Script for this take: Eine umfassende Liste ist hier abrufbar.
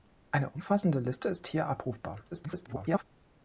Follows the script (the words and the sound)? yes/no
no